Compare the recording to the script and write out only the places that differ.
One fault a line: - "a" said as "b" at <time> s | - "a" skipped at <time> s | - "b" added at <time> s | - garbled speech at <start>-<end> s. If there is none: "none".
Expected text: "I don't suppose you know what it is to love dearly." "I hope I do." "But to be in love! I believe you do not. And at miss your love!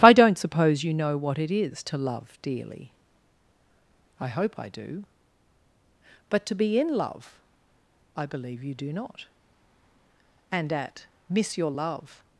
none